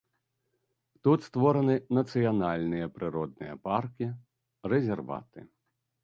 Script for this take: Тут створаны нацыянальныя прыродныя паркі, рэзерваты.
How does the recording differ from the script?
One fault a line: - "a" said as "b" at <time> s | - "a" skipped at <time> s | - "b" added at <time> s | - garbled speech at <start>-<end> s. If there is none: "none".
none